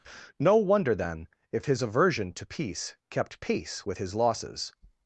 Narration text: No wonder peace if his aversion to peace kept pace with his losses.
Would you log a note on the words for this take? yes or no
yes